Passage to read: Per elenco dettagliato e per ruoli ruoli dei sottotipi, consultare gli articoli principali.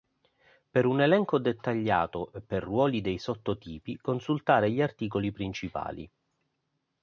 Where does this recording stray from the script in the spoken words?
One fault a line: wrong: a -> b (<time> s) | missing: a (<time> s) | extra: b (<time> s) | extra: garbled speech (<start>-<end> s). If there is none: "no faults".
extra: un (0.9 s)
missing: ruoli (3.0 s)